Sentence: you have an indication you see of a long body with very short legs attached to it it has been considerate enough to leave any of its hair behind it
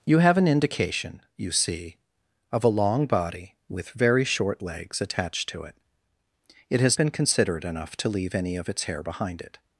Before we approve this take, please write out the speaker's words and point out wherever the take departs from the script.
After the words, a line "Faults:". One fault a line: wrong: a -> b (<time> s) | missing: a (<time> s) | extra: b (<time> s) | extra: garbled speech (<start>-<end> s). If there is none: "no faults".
you have an indication you see of a long body with very short legs attached to it it has been considerate enough to leave any of its hair behind it
Faults:
no faults